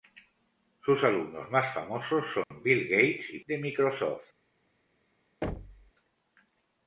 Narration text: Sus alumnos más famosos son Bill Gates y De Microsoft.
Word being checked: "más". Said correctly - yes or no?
yes